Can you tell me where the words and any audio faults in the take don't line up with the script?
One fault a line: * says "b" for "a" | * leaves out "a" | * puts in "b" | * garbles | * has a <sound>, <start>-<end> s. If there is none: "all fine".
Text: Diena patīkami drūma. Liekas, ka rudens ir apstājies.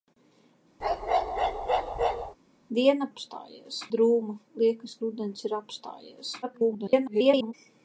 * has a bark, 0.8-2.4 s
* says "apstājies" for "patīkami"
* leaves out "ka"
* garbles